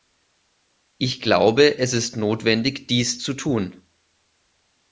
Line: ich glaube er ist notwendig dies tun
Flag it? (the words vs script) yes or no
yes